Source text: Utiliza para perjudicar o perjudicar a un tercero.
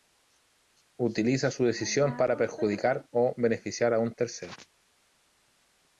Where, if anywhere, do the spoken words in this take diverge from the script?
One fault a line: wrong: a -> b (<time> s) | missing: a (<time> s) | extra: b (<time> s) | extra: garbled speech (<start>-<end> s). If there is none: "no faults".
extra: su decisión (1.5 s)
wrong: perjudicar -> beneficiar (3.4 s)